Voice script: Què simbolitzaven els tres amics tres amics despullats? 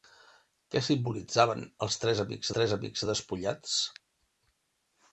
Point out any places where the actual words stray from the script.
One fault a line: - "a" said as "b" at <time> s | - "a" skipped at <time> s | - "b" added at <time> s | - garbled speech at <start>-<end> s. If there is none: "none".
none